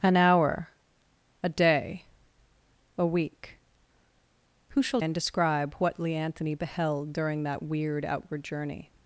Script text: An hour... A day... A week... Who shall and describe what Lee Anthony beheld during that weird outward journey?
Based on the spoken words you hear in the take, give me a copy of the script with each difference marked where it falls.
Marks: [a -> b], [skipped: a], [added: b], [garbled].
An hour... A day... A week... Who shall and describe what Lee Anthony beheld during that weird outward journey?